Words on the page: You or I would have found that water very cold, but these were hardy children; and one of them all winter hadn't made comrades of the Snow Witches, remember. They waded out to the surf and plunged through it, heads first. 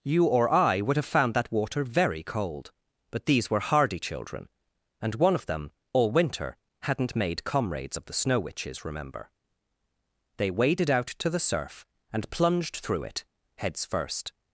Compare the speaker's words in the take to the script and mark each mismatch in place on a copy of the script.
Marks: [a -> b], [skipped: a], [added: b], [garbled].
You or I would have found that water very cold, but these were hardy children; and one of them all winter hadn't made comrades of the Snow Witches, remember. They waded out to the surf and plunged through it, heads first.